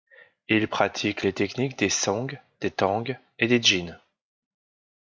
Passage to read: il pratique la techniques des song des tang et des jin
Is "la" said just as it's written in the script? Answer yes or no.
no